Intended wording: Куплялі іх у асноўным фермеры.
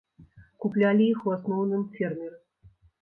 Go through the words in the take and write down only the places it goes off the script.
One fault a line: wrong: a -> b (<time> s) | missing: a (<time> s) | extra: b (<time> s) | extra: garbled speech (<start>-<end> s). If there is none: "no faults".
no faults